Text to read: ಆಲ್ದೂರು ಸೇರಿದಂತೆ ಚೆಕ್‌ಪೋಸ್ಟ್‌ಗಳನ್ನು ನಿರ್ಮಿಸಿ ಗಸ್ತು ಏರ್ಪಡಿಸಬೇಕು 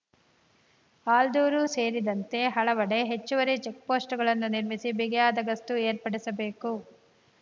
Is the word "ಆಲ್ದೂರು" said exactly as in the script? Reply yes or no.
yes